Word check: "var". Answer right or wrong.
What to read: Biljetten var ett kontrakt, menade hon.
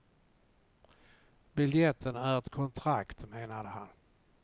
wrong